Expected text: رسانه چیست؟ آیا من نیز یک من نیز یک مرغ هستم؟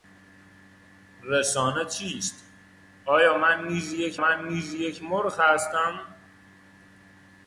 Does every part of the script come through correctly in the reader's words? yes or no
yes